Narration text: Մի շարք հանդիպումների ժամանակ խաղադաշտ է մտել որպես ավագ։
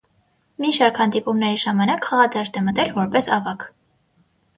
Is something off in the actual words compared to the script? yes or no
no